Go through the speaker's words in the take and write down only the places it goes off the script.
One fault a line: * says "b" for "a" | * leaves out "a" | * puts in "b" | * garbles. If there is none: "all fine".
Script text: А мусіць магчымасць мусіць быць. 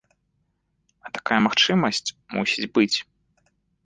* says "такая" for "мусіць"